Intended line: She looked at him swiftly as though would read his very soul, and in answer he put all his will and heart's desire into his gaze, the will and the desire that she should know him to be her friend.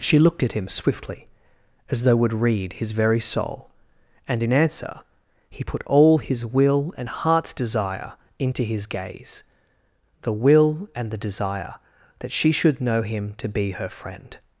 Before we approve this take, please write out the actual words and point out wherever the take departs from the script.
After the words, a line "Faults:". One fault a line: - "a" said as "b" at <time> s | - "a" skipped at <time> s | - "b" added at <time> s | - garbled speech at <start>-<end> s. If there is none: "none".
She looked at him swiftly as though would read his very soul, and in answer he put all his will and heart's desire into his gaze, the will and the desire that she should know him to be her friend.
Faults:
none